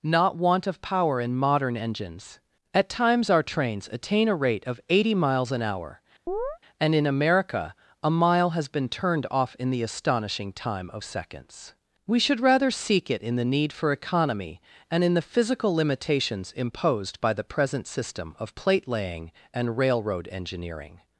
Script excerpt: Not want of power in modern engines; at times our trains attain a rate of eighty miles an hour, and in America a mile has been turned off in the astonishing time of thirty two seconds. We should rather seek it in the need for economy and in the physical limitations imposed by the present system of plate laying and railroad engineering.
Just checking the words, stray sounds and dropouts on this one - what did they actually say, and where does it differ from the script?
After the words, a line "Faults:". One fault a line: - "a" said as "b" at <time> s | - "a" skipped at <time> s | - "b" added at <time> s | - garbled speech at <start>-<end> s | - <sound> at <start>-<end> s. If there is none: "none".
Not want of power in modern engines; at times our trains attain a rate of eighty miles an hour, and in America a mile has been turned off in the astonishing time of seconds. We should rather seek it in the need for economy and in the physical limitations imposed by the present system of plate laying and railroad engineering.
Faults:
- chirp at 6.3-6.6 s
- "thirty two" skipped at 11.0 s